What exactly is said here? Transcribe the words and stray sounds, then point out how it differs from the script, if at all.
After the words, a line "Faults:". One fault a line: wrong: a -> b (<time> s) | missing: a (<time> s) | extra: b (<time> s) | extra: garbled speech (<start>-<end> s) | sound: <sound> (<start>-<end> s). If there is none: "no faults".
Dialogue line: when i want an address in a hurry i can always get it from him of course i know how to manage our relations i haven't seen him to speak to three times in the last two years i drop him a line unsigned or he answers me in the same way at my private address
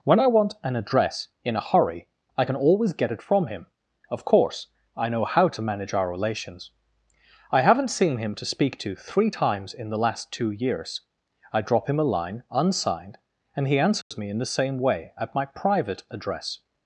when i want an address in a hurry i can always get it from him of course i know how to manage our relations i haven't seen him to speak to three times in the last two years i drop him a line unsigned and he answers me in the same way at my private address
Faults:
wrong: or -> and (13.5 s)
sound: dropout (14.0-14.1 s)